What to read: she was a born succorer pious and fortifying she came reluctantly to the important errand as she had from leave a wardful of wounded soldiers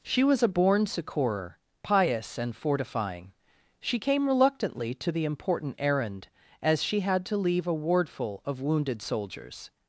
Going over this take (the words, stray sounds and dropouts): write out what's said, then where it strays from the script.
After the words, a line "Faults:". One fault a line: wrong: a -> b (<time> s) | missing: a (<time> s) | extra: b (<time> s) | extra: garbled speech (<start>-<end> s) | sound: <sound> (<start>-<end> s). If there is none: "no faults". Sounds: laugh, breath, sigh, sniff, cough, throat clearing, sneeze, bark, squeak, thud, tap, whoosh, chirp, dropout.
she was a born succorer pious and fortifying she came reluctantly to the important errand as she had to leave a wardful of wounded soldiers
Faults:
wrong: from -> to (7.3 s)